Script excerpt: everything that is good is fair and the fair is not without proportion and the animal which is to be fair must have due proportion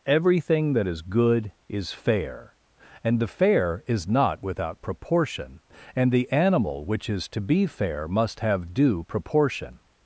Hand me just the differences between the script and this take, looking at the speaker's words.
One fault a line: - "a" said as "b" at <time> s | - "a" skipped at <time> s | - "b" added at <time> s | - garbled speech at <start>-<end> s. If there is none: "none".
none